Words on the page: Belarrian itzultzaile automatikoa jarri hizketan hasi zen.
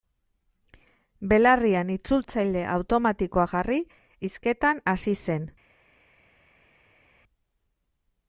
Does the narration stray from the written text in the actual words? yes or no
no